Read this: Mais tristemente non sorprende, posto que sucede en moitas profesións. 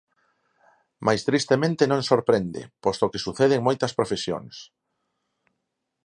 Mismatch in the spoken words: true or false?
false